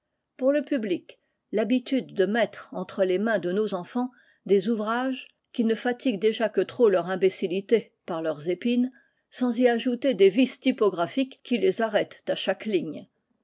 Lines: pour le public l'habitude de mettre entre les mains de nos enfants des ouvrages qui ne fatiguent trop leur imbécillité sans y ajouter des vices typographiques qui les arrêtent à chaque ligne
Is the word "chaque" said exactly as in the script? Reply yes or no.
yes